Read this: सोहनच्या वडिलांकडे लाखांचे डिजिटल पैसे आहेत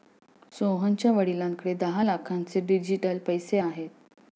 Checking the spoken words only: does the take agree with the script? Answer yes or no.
no